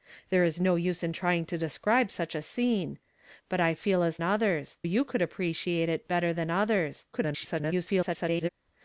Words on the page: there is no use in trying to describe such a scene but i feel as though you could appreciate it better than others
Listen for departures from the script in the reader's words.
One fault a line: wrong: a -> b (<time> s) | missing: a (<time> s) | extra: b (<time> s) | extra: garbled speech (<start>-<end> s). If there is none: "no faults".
wrong: though -> others (4.2 s)
extra: garbled speech (7.1-8.5 s)